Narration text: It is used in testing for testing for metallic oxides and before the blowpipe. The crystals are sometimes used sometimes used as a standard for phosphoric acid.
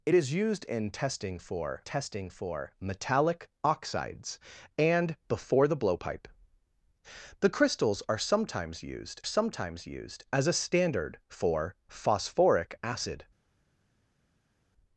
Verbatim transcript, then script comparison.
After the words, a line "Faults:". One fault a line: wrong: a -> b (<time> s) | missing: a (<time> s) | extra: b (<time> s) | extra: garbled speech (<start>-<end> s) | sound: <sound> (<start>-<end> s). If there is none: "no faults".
It is used in testing for testing for metallic oxides and before the blowpipe. The crystals are sometimes used sometimes used as a standard for phosphoric acid.
Faults:
no faults